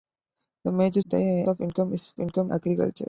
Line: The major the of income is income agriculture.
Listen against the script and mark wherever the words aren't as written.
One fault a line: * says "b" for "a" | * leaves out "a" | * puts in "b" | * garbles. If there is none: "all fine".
all fine